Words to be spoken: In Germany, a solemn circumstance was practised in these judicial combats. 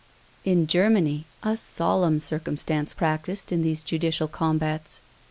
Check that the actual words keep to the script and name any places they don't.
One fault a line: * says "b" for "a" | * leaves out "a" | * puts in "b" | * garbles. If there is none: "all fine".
* leaves out "was"